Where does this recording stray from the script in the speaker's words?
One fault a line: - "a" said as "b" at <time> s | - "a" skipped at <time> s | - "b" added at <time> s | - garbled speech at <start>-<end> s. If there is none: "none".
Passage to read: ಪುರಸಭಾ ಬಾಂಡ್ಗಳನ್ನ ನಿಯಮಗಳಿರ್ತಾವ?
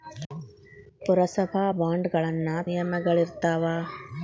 none